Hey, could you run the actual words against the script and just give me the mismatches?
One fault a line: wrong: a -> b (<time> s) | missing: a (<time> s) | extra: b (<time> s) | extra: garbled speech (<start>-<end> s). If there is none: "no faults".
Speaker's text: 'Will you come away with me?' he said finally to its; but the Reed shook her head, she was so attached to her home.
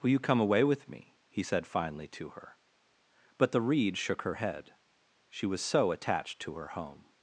wrong: its -> her (2.3 s)